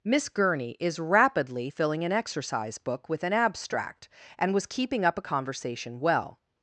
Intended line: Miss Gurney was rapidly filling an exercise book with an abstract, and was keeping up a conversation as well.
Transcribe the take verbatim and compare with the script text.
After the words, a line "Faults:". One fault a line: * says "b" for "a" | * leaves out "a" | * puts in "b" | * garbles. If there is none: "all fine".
Miss Gurney is rapidly filling an exercise book with an abstract, and was keeping up a conversation well.
Faults:
* says "is" for "was"
* leaves out "as"